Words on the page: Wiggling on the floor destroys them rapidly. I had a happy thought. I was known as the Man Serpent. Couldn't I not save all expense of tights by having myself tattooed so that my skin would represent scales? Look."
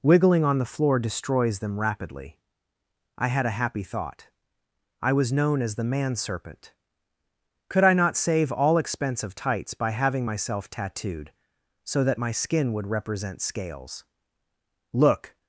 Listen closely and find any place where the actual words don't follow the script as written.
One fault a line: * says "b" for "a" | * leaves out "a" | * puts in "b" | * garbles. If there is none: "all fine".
* says "Could" for "Couldn't"